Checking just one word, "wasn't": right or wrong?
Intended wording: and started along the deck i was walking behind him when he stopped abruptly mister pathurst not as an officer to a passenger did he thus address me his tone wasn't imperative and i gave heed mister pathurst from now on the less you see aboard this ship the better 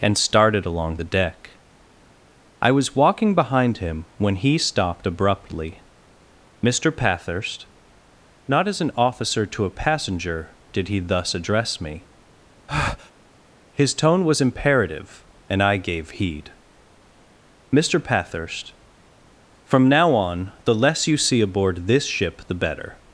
wrong